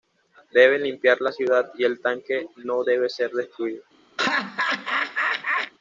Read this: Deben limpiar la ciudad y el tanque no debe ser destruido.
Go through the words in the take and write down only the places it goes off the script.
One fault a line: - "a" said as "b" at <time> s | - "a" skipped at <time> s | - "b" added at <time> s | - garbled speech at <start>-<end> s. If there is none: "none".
none